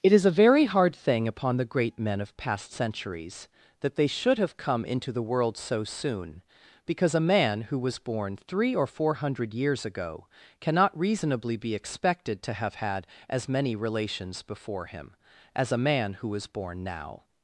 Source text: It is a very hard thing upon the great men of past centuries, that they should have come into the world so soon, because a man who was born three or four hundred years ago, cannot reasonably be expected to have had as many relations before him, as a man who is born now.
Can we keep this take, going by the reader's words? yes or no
yes